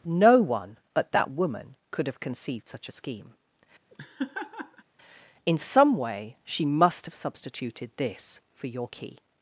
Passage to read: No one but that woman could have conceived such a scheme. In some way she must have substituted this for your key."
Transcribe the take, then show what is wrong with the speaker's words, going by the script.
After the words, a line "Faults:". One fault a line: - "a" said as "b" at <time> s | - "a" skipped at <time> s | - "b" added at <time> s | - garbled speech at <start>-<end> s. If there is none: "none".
No one but that woman could have conceived such a scheme. In some way she must have substituted this for your key."
Faults:
none